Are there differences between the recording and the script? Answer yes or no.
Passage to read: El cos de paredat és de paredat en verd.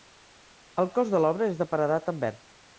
yes